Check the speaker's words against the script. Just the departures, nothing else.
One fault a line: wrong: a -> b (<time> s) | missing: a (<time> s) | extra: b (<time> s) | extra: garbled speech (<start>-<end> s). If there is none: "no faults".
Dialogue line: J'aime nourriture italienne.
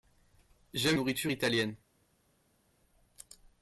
no faults